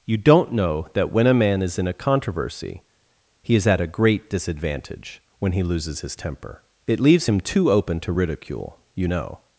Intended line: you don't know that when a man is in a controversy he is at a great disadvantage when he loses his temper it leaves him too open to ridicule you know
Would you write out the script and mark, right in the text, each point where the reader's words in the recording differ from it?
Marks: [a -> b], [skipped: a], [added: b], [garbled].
you don't know that when a man is in a controversy he is at a great disadvantage when he loses his temper it leaves him too open to ridicule you know